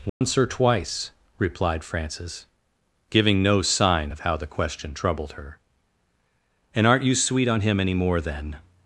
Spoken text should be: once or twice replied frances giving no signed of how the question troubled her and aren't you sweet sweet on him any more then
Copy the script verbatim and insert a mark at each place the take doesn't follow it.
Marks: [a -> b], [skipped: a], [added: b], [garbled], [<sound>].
once [dropout] or twice replied frances giving no [signed -> sign] of how the question troubled her and aren't you sweet [skipped: sweet] on him any more then